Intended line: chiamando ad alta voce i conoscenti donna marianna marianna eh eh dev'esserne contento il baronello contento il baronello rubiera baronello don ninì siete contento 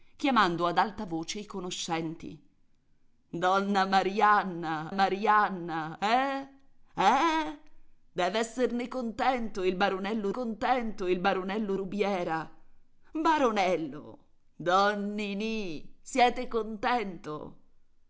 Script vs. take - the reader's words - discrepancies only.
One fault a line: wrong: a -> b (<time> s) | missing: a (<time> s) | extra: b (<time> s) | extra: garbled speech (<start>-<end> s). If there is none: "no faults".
no faults